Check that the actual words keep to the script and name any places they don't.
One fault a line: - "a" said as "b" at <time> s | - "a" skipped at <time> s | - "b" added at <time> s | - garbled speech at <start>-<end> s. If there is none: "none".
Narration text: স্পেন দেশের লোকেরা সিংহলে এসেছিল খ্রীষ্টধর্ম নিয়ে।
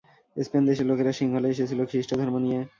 none